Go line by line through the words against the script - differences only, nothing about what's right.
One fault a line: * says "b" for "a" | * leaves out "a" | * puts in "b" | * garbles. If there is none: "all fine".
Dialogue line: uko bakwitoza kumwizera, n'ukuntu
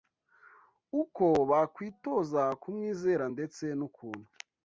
* puts in "ndetse"